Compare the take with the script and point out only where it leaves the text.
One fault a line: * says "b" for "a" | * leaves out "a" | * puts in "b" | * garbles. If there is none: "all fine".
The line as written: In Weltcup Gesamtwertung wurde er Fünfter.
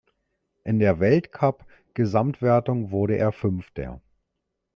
* puts in "der"